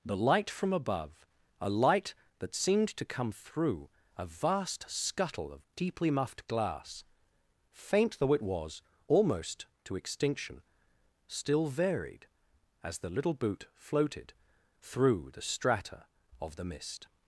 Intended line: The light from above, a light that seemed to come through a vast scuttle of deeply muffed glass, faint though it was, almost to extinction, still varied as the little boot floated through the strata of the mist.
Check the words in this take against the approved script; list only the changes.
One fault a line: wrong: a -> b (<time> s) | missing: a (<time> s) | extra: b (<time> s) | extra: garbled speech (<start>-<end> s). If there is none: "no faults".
no faults